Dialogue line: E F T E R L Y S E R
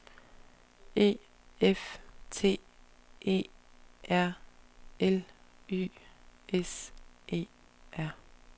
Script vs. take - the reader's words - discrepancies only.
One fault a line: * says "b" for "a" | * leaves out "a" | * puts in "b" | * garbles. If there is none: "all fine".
all fine